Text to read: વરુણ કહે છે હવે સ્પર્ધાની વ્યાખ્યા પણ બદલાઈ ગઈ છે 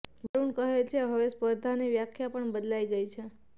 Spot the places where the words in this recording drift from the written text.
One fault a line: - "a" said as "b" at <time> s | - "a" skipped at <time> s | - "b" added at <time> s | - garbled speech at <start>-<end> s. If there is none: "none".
none